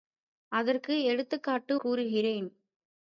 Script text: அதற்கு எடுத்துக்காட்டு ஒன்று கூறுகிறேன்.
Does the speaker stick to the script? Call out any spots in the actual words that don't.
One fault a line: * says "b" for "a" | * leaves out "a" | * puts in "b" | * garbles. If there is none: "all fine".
* leaves out "ஒன்று"